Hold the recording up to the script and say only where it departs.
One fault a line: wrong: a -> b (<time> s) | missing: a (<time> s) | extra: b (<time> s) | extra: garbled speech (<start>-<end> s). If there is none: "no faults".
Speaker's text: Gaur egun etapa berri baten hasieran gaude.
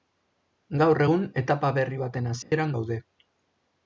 no faults